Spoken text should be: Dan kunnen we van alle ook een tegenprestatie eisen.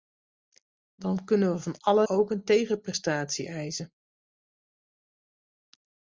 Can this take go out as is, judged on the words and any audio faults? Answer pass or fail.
pass